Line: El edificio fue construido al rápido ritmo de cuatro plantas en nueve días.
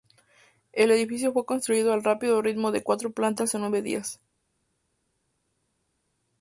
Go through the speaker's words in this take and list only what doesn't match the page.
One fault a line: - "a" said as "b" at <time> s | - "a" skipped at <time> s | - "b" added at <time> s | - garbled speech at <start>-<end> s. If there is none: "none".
none